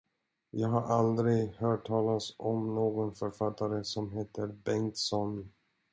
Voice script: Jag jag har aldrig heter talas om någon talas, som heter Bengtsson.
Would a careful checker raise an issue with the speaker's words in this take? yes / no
yes